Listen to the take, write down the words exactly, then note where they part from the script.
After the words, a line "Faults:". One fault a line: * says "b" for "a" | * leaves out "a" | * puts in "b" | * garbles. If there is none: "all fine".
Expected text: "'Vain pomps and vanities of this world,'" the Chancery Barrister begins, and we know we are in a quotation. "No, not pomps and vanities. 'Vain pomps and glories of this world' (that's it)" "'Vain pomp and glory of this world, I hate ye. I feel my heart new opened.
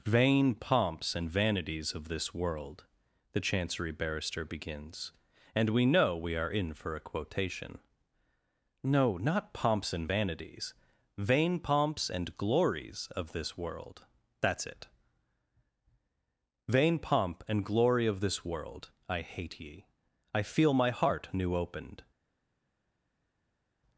"'Vain pomps and vanities of this world,'" the Chancery Barrister begins, and we know we are in for a quotation. "No, not pomps and vanities. 'Vain pomps and glories of this world' (that's it)" "'Vain pomp and glory of this world, I hate ye. I feel my heart new opened.
Faults:
* puts in "for"